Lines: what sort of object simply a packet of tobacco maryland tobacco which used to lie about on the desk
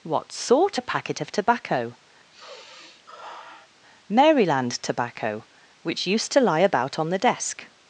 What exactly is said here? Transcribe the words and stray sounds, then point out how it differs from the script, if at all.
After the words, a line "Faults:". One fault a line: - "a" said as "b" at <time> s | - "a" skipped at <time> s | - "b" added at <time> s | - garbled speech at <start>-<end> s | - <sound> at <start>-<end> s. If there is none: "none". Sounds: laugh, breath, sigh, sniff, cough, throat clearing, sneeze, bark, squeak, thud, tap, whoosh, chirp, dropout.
what sort a packet of tobacco maryland tobacco which used to lie about on the desk
Faults:
- "of object simply" skipped at 0.8 s
- sigh at 2.3-3.7 s